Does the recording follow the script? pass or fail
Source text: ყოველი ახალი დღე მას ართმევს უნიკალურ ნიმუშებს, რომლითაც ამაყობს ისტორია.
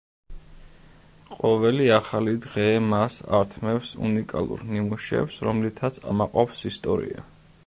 pass